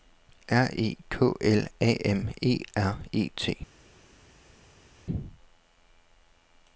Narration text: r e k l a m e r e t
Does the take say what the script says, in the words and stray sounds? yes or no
yes